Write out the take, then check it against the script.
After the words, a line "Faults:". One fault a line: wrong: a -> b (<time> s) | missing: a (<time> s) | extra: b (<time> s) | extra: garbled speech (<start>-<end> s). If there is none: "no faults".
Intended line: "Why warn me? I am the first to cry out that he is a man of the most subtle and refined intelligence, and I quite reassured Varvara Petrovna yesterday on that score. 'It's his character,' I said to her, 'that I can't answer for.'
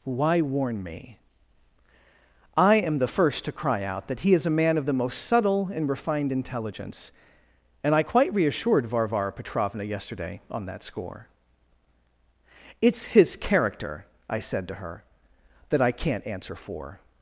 "Why warn me? I am the first to cry out that he is a man of the most subtle and refined intelligence, and I quite reassured Varvara Petrovna yesterday on that score. 'It's his character,' I said to her, 'that I can't answer for.'
Faults:
no faults